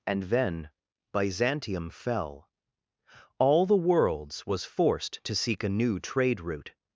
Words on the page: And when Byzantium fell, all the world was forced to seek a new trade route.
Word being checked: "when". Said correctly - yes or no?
no